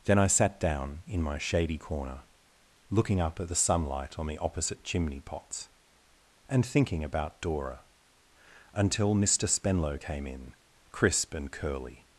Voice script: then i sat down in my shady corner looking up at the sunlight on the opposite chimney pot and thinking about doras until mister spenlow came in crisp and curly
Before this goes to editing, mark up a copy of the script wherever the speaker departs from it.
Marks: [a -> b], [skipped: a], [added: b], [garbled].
then i sat down in my shady corner looking up at the sunlight on the opposite chimney [pot -> pots] and thinking about [doras -> dora] until mister spenlow came in crisp and curly